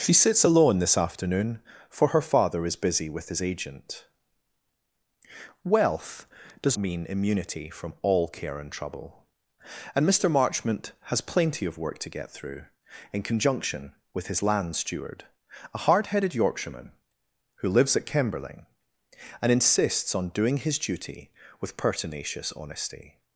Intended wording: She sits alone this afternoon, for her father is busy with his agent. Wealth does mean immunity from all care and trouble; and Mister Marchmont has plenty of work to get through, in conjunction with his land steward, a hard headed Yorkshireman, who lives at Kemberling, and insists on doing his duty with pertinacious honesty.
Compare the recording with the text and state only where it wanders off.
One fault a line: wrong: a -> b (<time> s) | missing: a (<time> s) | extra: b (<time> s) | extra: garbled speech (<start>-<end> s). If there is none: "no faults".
no faults